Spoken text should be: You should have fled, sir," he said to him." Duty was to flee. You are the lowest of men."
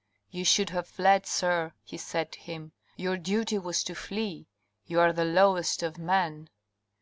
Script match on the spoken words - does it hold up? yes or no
no